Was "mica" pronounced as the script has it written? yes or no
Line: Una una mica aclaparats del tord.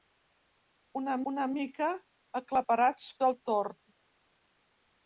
yes